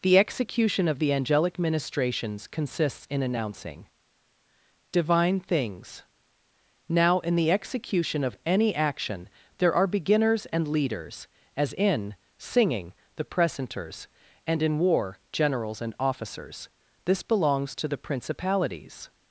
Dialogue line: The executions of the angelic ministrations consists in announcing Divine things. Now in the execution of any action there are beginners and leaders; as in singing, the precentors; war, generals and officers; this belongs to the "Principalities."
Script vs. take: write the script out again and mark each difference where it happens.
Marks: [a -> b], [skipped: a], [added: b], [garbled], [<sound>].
The [executions -> execution] of the angelic ministrations consists in announcing Divine things. Now in the execution of any action there are beginners and leaders; as in singing, the precentors; [added: and in] war, generals and officers; this belongs to the "Principalities."